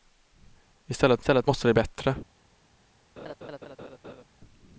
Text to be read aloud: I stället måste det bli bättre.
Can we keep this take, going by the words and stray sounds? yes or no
no